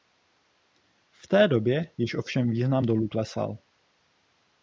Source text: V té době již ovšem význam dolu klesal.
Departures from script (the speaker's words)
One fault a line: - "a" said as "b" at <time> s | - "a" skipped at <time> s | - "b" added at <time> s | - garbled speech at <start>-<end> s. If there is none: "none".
none